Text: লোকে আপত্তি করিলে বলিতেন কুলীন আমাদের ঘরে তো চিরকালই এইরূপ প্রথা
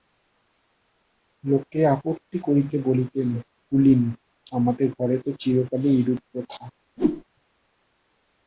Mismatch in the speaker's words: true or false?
false